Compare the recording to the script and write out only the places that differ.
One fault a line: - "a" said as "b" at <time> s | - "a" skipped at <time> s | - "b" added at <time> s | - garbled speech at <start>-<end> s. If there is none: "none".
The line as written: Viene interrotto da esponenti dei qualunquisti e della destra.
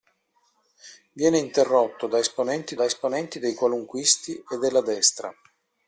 - "da esponenti" added at 2.7 s